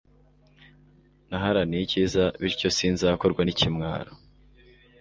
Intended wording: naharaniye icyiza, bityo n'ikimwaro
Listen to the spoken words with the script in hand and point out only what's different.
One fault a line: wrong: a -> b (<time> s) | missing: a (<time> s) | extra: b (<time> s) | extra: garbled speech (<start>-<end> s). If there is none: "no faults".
extra: sinzakorwa (2.8 s)